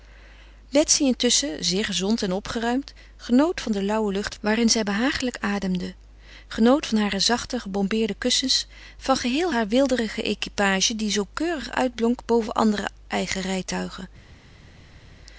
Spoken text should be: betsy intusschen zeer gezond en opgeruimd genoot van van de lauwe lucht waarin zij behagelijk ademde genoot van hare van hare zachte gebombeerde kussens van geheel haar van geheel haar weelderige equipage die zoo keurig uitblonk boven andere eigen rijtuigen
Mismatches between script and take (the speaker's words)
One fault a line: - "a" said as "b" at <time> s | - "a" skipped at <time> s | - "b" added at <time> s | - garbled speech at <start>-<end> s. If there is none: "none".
- "van" skipped at 3.7 s
- "van hare" skipped at 7.2 s
- "van geheel haar" skipped at 9.7 s